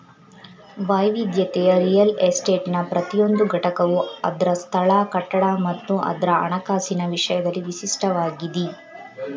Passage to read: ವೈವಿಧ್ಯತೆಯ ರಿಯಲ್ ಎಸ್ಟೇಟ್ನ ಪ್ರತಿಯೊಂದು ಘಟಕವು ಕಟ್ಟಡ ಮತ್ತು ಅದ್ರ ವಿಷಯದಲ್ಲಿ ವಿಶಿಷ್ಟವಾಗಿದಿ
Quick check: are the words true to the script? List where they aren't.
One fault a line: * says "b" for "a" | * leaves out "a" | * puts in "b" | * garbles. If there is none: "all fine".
* puts in "ಅದ್ರ ಸ್ಥಳ"
* puts in "ಹಣಕಾಸಿನ"